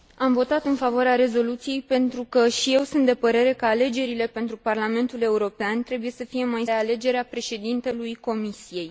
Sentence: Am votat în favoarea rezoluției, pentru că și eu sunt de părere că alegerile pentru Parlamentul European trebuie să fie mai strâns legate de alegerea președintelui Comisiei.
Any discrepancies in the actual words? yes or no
yes